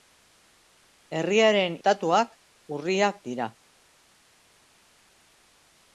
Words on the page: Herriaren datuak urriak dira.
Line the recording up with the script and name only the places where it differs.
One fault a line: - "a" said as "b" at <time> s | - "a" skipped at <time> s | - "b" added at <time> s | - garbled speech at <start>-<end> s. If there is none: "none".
none